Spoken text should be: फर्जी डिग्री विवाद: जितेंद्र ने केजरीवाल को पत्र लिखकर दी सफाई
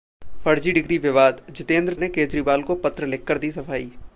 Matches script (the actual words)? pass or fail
pass